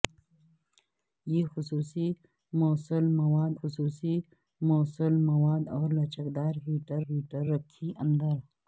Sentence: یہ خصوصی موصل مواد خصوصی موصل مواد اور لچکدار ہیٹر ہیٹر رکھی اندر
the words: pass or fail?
pass